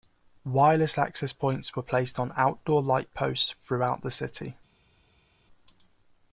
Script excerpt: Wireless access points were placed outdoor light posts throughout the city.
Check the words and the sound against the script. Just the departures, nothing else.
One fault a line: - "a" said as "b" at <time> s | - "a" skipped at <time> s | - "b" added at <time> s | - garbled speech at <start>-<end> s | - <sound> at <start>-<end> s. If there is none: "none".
- "on" added at 2.2 s